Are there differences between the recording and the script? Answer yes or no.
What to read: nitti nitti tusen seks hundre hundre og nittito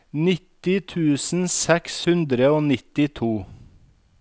yes